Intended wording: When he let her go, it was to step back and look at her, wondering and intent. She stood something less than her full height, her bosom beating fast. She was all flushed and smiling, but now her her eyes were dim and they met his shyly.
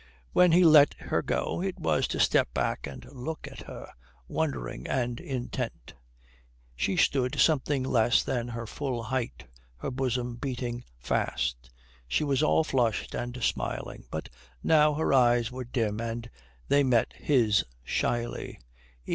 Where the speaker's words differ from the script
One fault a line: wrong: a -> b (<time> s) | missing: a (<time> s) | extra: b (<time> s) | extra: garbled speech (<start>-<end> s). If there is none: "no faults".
missing: her (15.1 s)